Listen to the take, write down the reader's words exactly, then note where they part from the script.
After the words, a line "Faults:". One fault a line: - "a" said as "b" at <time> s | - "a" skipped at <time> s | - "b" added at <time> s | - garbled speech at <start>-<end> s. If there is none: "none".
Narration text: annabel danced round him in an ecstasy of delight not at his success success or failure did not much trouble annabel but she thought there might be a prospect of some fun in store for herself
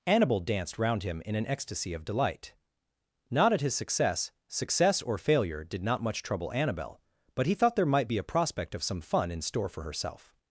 annabel danced round him in an ecstasy of delight not at his success success or failure did not much trouble annabel but he thought there might be a prospect of some fun in store for herself
Faults:
- "she" said as "he" at 7.5 s